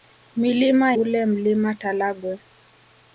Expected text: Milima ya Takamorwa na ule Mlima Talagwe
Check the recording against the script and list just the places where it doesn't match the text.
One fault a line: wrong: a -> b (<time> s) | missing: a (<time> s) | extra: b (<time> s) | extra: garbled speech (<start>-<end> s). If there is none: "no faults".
missing: ya Takamorwa na (0.9 s)